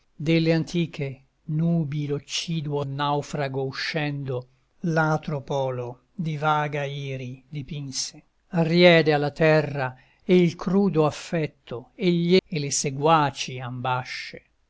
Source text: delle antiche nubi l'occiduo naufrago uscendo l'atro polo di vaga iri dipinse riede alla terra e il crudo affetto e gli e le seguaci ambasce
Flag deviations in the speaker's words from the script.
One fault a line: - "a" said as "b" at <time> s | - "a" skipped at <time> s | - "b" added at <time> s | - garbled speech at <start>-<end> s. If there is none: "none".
none